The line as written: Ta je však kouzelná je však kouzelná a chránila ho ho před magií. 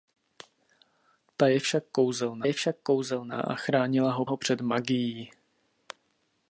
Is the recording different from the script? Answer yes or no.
no